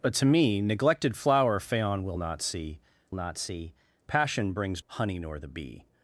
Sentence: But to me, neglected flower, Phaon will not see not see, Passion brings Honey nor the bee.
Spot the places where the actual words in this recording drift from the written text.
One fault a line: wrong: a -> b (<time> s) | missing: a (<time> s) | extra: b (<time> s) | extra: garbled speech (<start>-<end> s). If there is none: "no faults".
no faults